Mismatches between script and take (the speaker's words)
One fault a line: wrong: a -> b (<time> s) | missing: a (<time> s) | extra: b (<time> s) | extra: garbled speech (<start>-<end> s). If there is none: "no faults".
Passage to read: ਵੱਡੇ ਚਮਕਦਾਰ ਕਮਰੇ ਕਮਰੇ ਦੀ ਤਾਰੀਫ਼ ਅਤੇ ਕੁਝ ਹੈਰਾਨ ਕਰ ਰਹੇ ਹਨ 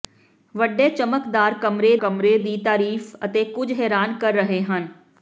no faults